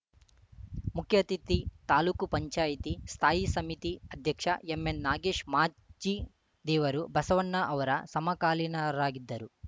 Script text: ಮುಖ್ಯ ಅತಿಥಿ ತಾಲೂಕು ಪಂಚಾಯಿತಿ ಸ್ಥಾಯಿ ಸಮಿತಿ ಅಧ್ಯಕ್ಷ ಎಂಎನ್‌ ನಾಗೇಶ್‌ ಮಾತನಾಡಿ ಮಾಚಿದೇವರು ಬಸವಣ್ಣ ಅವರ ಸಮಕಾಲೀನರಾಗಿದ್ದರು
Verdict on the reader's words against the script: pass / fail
fail